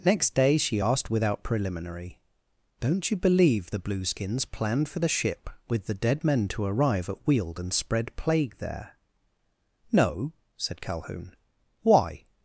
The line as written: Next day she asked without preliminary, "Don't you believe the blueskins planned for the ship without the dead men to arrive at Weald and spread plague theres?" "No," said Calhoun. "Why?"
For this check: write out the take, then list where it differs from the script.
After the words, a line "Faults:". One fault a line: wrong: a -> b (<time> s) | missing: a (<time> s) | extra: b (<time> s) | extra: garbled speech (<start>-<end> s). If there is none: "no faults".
Next day she asked without preliminary, "Don't you believe the blueskins planned for the ship with the dead men to arrive at Weald and spread plague there?" "No," said Calhoun. "Why?"
Faults:
wrong: without -> with (5.7 s)
wrong: theres -> there (8.6 s)